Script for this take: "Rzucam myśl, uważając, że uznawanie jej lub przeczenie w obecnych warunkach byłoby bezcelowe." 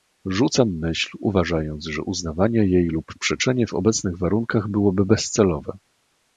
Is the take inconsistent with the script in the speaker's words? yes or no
no